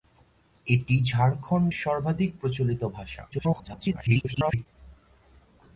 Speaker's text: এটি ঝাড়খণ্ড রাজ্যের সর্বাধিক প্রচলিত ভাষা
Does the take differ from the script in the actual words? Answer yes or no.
yes